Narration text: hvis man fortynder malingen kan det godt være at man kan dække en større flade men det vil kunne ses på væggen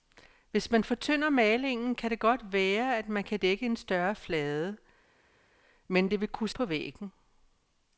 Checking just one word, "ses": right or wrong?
wrong